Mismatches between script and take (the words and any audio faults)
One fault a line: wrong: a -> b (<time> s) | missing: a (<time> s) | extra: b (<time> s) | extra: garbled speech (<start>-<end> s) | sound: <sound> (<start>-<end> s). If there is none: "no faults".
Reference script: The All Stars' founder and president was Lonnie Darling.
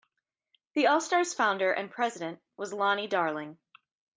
no faults